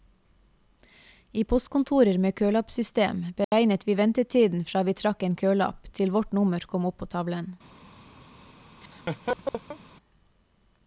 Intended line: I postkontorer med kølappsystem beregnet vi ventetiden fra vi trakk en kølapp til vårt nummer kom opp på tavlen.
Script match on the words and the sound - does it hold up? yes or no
no